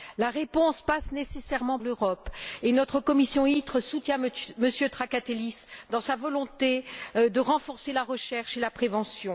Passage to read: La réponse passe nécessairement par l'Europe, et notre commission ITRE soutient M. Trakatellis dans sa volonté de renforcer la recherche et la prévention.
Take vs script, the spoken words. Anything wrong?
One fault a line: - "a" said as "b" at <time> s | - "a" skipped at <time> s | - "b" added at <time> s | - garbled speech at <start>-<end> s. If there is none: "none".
- "par" skipped at 1.8 s